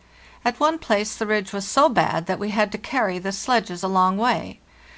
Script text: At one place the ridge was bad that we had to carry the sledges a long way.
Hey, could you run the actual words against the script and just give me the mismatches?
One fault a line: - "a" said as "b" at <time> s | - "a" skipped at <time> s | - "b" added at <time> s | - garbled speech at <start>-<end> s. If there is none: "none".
- "so" added at 1.7 s